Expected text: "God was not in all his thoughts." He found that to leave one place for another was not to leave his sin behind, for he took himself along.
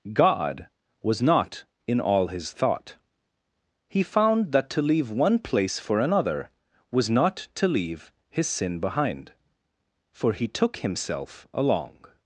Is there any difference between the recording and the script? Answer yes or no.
yes